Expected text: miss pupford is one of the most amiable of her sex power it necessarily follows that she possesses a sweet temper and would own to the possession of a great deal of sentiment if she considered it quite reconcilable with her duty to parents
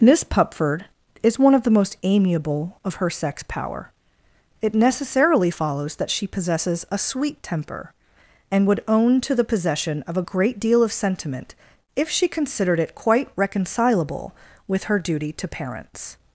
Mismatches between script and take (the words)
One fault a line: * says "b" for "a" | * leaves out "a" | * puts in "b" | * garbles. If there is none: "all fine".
all fine